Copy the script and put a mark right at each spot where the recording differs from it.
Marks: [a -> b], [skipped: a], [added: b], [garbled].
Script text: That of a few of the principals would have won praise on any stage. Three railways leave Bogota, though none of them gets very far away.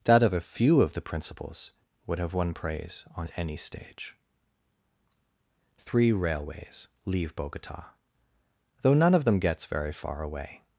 That of a few of the principals would have won praise on any stage. Three railways leave Bogota, though none of them gets very far away.